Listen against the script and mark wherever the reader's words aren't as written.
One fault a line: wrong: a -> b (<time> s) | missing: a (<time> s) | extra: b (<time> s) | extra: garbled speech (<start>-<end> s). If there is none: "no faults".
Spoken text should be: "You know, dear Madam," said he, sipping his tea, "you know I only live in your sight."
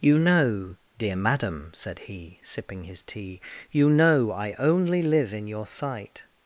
no faults